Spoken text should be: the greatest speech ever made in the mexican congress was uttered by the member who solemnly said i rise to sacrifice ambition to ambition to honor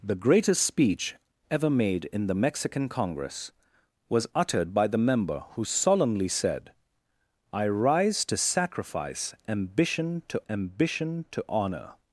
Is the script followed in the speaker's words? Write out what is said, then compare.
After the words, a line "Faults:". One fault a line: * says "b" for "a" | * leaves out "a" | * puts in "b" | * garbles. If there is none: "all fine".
the greatest speech ever made in the mexican congress was uttered by the member who solemnly said i rise to sacrifice ambition to ambition to honor
Faults:
all fine